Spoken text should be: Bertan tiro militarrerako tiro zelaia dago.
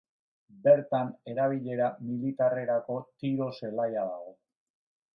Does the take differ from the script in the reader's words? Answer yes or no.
yes